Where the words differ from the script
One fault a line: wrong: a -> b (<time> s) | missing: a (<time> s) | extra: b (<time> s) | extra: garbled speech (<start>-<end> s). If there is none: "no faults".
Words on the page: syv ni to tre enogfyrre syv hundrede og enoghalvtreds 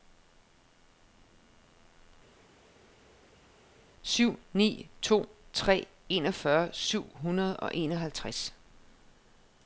no faults